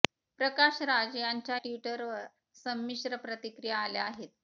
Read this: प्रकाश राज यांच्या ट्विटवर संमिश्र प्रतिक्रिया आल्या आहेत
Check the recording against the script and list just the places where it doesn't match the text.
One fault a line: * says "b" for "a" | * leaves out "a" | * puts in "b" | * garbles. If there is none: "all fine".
all fine